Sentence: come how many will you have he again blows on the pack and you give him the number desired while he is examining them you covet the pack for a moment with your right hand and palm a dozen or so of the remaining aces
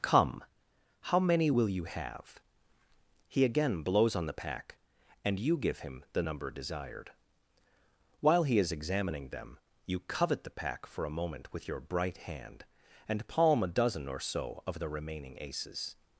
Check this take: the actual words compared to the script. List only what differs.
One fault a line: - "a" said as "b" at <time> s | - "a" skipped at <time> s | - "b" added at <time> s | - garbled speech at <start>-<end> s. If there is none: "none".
- "right" said as "bright" at 11.8 s